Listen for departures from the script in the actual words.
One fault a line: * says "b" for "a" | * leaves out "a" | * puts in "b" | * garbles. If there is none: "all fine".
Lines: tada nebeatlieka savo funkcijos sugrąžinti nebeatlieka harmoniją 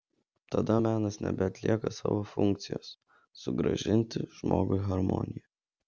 * puts in "menas"
* says "žmogui" for "nebeatlieka"